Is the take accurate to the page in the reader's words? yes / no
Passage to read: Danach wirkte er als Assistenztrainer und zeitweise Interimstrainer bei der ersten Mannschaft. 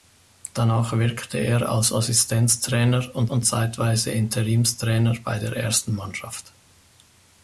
no